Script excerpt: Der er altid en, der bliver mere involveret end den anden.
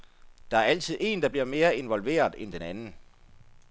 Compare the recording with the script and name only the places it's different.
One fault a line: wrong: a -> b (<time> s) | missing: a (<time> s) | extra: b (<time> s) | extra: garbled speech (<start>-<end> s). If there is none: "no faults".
no faults